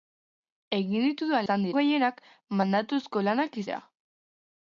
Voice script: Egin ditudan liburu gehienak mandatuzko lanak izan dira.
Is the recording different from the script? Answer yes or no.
yes